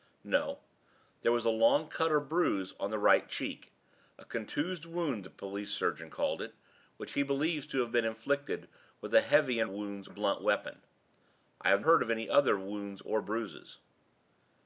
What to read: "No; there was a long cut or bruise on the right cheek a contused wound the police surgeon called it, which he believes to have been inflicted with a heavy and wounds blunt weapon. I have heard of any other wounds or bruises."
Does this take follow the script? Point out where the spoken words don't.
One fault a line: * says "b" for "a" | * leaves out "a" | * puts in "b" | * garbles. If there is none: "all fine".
all fine